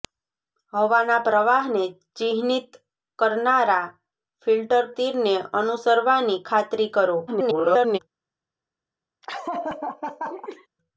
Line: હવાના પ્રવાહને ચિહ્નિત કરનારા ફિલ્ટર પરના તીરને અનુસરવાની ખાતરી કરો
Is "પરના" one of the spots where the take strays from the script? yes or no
yes